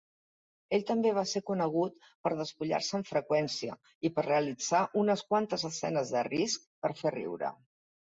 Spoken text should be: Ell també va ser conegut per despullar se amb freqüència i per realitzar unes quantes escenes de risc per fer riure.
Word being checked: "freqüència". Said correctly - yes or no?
yes